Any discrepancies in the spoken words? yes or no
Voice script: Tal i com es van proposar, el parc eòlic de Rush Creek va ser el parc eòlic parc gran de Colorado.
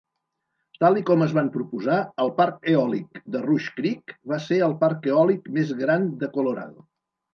yes